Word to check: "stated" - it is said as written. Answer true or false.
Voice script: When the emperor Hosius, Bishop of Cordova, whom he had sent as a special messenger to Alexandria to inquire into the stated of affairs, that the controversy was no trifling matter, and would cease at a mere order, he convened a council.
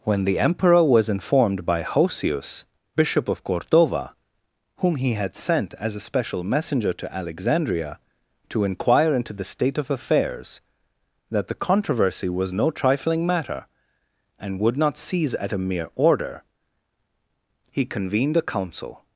false